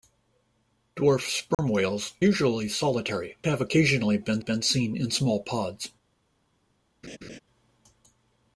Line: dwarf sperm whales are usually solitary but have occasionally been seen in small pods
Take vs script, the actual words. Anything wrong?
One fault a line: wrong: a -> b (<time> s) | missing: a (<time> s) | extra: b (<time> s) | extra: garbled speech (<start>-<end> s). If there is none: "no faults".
missing: are (2.1 s)
missing: but (3.4 s)
extra: been (4.4 s)